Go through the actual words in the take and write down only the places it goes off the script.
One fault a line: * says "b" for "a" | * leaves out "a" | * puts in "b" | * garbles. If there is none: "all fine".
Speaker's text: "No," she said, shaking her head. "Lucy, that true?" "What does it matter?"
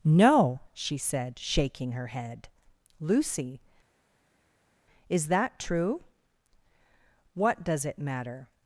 * puts in "is"